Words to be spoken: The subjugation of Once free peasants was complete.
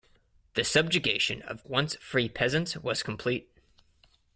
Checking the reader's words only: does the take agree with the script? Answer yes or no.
yes